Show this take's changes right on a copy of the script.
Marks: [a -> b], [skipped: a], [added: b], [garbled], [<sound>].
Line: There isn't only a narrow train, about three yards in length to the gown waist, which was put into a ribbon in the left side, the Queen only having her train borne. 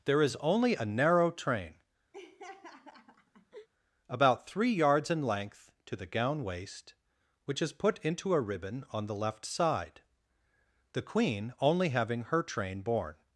There [isn't -> is] only a narrow train, [laugh] about three yards in length to the gown waist, which [was -> is] put into a ribbon [in -> on] the left side, the Queen only having her train borne.